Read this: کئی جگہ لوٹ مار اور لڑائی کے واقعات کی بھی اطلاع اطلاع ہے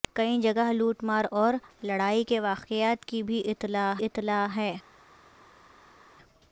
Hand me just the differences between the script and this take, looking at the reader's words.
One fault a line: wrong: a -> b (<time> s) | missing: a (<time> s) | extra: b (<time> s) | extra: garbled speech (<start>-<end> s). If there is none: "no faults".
no faults